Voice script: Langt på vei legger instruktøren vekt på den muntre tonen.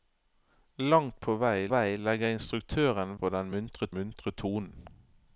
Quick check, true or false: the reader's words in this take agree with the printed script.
false